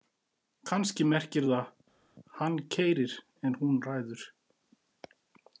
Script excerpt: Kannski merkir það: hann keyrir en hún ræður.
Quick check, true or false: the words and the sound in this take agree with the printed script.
true